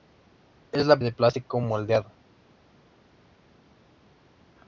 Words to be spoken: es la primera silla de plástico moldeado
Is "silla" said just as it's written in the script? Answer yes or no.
no